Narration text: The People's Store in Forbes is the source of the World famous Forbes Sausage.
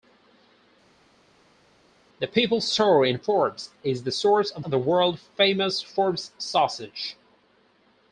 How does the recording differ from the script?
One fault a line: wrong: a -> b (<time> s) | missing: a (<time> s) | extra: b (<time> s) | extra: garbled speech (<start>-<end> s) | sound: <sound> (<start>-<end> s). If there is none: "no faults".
extra: of (4.6 s)